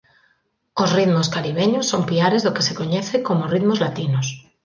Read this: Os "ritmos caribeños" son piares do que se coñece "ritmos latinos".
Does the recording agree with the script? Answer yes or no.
no